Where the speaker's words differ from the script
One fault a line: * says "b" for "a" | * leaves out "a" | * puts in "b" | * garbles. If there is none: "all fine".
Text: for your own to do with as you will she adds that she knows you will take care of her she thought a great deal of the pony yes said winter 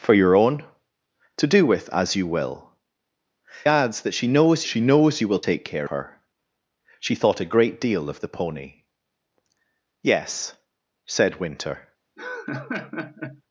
* leaves out "she"
* puts in "she knows"
* leaves out "of"